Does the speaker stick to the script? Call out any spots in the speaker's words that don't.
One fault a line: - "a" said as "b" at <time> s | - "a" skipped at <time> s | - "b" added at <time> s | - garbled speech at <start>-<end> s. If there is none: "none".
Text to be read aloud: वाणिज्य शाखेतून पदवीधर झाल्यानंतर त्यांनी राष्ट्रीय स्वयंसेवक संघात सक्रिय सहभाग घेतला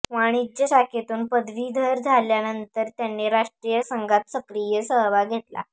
- "स्वयंसेवक" skipped at 3.8 s